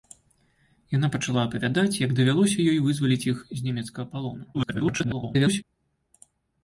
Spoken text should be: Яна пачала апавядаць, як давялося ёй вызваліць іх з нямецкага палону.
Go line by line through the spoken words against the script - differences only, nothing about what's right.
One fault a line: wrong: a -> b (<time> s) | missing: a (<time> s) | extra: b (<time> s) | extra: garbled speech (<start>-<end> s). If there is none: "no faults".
extra: garbled speech (4.5-5.6 s)